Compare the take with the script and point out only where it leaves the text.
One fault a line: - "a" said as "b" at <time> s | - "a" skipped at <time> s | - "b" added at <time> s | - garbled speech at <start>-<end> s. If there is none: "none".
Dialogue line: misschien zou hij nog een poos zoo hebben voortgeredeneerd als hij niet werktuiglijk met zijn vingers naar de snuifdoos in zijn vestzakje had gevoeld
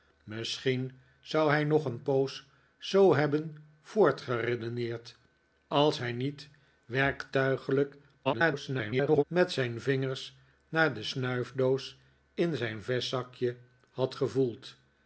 - garbled speech at 8.2-9.2 s